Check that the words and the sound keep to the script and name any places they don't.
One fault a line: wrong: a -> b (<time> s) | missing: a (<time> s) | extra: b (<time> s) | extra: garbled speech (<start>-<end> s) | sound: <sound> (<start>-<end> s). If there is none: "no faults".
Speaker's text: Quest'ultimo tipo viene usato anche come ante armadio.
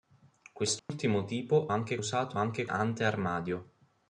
sound: dropout (0.8-0.9 s)
wrong: viene -> anche (1.7 s)
missing: come (2.6 s)